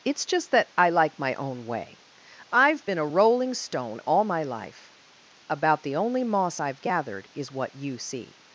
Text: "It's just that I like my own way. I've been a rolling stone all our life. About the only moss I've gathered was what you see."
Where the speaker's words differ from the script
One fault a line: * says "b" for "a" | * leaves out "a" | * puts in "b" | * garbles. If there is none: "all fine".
* says "my" for "our"
* says "is" for "was"